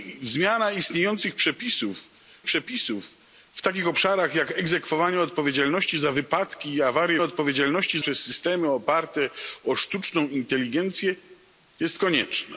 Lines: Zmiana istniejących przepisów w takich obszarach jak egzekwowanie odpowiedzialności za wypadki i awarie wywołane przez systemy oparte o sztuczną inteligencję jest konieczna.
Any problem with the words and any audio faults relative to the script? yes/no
yes